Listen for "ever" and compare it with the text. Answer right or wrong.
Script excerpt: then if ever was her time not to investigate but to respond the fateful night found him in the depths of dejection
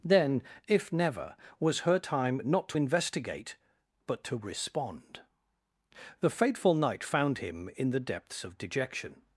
wrong